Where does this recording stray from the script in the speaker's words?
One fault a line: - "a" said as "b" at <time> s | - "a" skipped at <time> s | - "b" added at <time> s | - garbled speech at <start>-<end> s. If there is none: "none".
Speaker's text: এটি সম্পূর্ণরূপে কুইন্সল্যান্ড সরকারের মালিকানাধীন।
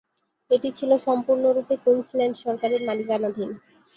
- "ছিল" added at 0.8 s